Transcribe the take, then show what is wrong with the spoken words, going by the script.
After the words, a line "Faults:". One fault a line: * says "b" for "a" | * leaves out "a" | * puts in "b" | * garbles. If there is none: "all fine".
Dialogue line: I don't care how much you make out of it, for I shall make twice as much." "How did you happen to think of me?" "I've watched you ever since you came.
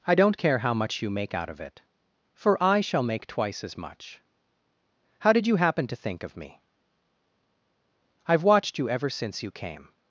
I don't care how much you make out of it, for I shall make twice as much." "How did you happen to think of me?" "I've watched you ever since you came.
Faults:
all fine